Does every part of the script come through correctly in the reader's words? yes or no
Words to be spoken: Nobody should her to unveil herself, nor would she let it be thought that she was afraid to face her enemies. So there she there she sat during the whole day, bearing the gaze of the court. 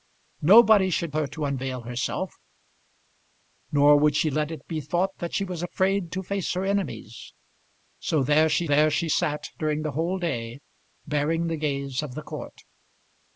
yes